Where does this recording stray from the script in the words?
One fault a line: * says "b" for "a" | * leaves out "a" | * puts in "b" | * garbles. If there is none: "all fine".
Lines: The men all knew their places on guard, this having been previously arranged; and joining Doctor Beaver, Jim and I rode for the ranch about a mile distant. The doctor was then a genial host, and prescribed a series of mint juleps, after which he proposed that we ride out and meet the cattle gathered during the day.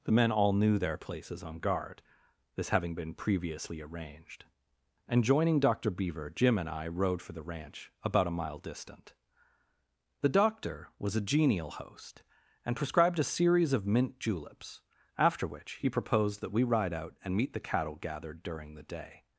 * leaves out "then"